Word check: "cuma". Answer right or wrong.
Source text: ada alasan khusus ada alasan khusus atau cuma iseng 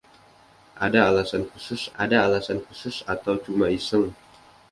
right